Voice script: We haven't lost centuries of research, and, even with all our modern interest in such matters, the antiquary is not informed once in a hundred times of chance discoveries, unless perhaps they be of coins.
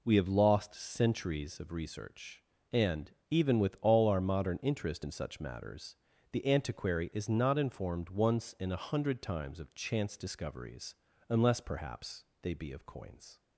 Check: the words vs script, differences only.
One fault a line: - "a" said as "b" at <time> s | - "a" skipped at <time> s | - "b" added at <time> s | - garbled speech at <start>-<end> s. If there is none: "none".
- "haven't" said as "have" at 0.1 s